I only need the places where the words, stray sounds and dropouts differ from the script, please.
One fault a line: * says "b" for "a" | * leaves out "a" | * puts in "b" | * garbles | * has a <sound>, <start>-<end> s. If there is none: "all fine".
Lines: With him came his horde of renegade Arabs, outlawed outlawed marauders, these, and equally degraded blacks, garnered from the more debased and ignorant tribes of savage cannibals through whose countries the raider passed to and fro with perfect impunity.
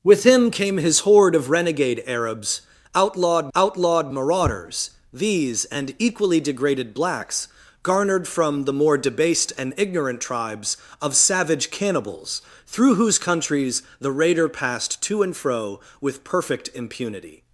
all fine